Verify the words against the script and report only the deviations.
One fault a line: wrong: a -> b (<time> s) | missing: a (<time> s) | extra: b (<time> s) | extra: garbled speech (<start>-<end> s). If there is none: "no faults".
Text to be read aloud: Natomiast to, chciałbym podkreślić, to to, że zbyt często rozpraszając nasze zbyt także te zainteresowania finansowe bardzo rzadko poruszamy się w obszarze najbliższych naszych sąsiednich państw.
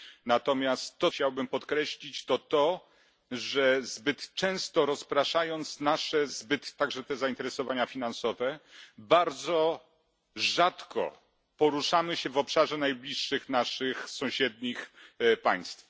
no faults